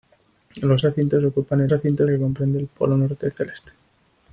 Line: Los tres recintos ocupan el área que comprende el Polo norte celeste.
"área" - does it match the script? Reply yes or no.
no